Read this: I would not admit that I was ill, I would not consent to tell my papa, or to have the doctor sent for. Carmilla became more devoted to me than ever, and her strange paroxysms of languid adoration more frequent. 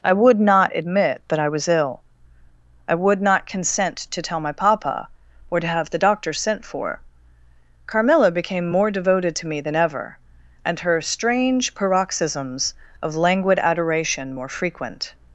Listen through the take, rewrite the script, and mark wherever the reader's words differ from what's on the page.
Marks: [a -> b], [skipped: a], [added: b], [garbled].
I would not admit that I was ill, I would not consent to tell my papa, or to have the doctor sent for. Carmilla became more devoted to me than ever, and her strange paroxysms of languid adoration more frequent.